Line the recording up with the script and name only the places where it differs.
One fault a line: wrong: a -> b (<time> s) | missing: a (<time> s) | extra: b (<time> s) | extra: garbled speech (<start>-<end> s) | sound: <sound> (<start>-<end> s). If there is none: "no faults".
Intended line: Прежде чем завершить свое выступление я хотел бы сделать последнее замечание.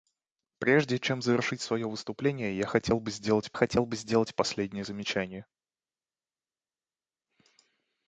extra: хотел бы сделать (3.5 s)